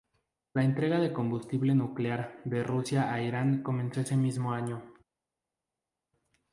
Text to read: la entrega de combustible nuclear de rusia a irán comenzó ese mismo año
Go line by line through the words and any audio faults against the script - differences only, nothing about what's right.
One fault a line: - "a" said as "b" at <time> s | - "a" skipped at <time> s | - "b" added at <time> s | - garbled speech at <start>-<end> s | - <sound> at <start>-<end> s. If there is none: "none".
none